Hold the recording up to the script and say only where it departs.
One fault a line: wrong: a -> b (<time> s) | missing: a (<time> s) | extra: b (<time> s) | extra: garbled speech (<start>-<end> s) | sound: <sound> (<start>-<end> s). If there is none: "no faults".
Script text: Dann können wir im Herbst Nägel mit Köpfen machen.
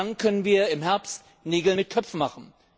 no faults